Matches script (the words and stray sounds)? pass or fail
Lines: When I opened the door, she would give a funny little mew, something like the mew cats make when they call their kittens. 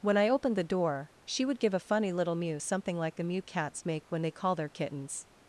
pass